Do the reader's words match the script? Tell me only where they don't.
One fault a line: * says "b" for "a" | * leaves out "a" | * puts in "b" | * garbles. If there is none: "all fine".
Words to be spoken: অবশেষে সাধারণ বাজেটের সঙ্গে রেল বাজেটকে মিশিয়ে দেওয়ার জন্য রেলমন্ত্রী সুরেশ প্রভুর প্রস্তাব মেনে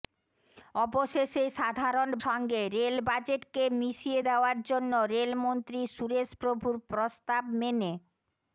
* leaves out "বাজেটের"